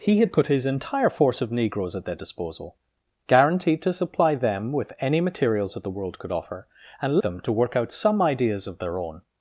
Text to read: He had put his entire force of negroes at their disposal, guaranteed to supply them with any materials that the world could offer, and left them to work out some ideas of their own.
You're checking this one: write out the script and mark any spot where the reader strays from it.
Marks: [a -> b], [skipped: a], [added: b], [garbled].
He had put his entire force of negroes at their disposal, guaranteed to supply them with any materials that the world could offer, and [skipped: left] them to work out some ideas of their own.